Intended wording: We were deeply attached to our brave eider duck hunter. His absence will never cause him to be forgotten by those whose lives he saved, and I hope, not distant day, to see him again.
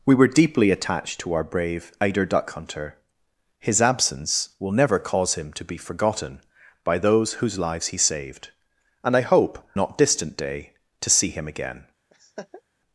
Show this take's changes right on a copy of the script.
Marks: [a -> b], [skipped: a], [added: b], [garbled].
We were deeply attached to our brave eider duck hunter. His absence will never cause him to be forgotten by those whose lives he saved, and I hope, not distant day, to see him again.